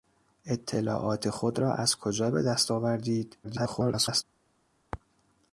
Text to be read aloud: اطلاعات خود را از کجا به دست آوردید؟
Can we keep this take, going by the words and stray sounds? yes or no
no